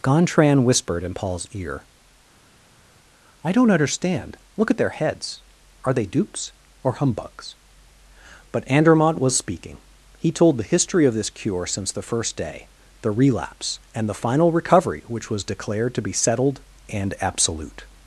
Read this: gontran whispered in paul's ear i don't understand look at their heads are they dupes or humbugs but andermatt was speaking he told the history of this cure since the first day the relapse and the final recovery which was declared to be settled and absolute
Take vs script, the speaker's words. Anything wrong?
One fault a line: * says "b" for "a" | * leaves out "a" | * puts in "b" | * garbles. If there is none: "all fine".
all fine